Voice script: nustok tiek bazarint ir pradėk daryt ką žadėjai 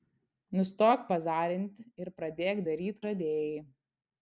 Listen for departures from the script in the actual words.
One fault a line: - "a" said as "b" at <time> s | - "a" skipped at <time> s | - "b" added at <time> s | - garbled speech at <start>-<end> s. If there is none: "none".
- "tiek" skipped at 1.0 s
- "ką" skipped at 3.0 s